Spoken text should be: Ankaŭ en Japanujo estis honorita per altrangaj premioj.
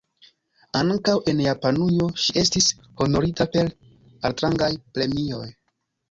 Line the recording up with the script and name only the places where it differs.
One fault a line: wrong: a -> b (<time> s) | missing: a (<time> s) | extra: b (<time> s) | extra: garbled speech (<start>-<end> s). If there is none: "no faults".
extra: ŝi (2.2 s)